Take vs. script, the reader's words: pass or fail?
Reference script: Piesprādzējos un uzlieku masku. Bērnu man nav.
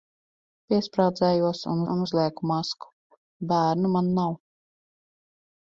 fail